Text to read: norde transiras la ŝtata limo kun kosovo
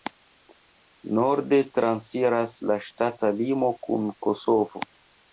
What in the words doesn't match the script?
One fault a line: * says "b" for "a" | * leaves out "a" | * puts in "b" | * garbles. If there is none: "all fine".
all fine